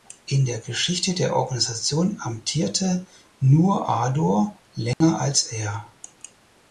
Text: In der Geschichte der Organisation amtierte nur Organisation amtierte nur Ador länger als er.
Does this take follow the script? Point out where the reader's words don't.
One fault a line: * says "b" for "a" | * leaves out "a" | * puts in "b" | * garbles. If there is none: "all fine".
* leaves out "Organisation amtierte nur"